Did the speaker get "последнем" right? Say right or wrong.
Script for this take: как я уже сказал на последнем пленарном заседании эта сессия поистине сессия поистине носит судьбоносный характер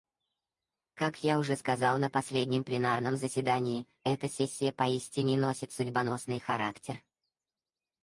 right